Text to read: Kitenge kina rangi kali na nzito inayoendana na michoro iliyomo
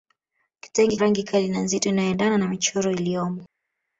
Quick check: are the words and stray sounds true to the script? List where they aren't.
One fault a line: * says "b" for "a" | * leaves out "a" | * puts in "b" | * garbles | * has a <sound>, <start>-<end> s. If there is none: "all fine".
* leaves out "kina"